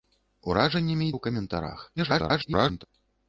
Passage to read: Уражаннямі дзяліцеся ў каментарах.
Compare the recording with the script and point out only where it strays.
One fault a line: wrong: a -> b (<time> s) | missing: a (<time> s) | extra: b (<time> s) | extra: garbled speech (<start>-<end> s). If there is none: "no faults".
missing: дзяліцеся (1.1 s)
extra: garbled speech (2.0-2.8 s)